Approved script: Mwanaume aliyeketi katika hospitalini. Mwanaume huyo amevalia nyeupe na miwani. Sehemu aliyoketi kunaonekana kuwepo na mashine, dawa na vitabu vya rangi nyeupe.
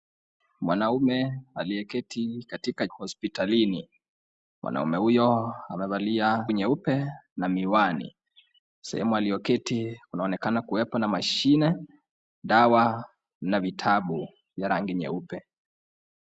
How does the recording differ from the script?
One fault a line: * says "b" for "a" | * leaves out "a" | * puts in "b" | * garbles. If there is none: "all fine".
all fine